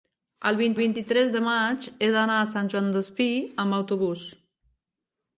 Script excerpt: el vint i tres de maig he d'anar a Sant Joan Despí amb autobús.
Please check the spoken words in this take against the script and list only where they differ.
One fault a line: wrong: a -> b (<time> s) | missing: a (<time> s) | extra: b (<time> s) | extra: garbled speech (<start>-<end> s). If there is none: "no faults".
extra: vint (0.8 s)